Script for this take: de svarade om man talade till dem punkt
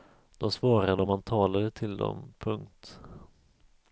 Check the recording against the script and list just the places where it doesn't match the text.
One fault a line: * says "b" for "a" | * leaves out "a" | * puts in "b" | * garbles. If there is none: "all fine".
all fine